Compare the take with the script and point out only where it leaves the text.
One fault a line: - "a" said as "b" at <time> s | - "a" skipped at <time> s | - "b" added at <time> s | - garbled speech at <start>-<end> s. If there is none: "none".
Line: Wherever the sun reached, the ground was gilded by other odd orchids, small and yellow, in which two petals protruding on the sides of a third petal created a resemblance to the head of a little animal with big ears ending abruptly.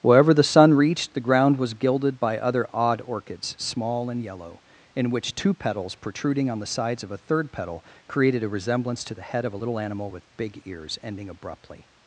none